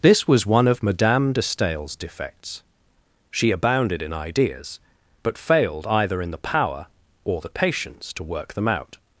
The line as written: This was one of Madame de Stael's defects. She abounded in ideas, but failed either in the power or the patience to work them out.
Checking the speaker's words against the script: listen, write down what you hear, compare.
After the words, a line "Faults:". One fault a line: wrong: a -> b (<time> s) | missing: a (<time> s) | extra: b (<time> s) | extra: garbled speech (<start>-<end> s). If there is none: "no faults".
This was one of Madame de Stael's defects. She abounded in ideas, but failed either in the power or the patience to work them out.
Faults:
no faults